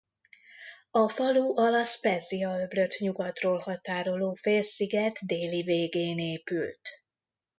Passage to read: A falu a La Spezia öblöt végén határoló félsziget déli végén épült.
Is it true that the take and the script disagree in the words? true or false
true